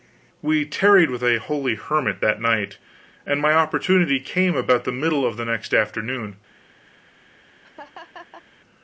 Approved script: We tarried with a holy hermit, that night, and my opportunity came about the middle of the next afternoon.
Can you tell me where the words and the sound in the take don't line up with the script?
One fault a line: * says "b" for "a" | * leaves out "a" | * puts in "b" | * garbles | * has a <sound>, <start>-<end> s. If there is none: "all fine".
* has a laugh, 7.6-8.4 s